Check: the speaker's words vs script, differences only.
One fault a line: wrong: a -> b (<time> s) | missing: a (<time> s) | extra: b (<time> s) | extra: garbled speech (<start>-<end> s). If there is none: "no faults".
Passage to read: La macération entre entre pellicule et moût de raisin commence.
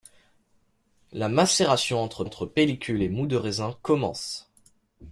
no faults